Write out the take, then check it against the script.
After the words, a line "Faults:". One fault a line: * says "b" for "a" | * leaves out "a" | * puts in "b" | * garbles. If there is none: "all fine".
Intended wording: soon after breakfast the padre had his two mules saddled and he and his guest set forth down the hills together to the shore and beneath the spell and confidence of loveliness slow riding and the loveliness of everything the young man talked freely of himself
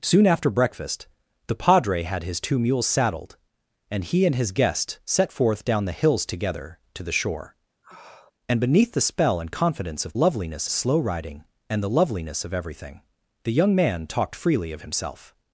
soon after breakfast the padre had his two mules saddled and he and his guest set forth down the hills together to the shore and beneath the spell and confidence of loveliness slow riding and the loveliness of everything the young man talked freely of himself
Faults:
all fine